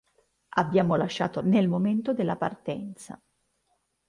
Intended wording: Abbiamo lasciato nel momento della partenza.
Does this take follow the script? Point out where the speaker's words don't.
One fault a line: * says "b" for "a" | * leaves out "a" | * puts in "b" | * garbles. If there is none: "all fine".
all fine